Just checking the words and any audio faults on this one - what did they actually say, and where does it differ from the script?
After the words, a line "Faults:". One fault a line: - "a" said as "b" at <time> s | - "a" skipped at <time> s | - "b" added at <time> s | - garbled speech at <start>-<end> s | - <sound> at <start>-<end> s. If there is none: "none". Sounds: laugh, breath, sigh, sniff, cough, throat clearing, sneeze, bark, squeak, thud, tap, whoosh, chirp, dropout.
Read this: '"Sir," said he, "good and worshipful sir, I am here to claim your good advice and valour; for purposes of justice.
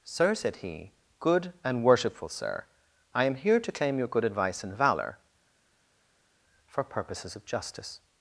'"Sir," said he, "good and worshipful sir, I am here to claim your good advice and valour; for purposes of justice.
Faults:
none